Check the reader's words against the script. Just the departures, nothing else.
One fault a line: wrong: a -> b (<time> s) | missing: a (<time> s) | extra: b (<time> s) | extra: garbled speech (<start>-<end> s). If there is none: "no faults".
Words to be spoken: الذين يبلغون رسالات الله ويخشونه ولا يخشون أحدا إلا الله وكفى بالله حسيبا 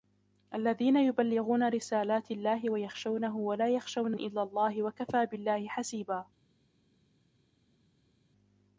missing: أحدا (4.2 s)